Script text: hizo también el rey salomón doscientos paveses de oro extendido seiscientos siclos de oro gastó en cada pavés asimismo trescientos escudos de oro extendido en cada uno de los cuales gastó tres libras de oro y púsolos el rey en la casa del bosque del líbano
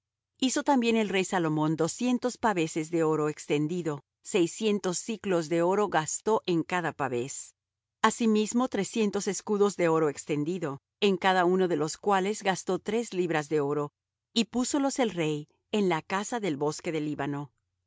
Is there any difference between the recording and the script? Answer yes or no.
no